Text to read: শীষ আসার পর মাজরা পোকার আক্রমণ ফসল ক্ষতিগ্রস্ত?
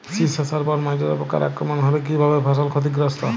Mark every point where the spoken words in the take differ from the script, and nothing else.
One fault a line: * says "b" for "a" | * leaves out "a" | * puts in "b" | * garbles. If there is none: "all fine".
* puts in "হলে কী ভাবে"